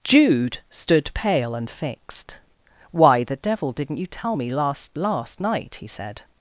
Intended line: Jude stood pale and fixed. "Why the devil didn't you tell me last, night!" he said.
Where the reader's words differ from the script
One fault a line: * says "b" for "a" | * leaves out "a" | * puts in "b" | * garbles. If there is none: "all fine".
* puts in "last"